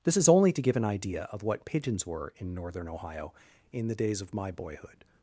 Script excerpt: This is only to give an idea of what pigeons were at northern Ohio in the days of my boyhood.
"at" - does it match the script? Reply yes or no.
no